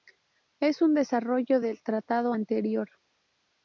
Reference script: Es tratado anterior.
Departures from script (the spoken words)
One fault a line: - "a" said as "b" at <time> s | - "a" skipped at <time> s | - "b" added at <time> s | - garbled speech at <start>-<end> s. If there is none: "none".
- "un desarrollo del" added at 0.8 s